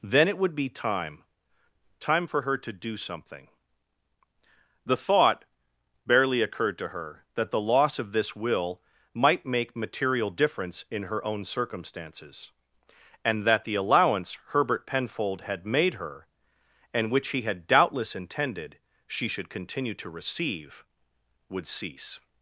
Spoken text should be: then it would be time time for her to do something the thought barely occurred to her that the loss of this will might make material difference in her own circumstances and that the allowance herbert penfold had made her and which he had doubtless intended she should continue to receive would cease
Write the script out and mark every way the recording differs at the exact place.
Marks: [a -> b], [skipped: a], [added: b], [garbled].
then it would be time time for her to do something the thought barely occurred to her that the loss of this will might make material difference in her own circumstances and that the allowance herbert penfold had made her and which he had doubtless intended she should continue to receive would cease